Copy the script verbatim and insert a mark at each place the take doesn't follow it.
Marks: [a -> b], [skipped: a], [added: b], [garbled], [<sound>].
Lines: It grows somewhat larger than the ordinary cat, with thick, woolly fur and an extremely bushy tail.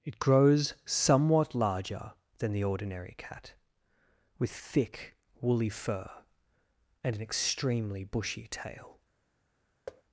It grows somewhat larger than the ordinary cat, with thick, woolly fur and an extremely bushy tail. [thud]